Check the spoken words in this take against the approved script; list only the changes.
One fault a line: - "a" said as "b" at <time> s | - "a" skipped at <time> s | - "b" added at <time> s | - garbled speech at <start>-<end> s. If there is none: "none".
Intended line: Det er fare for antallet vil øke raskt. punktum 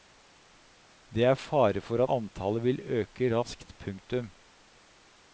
none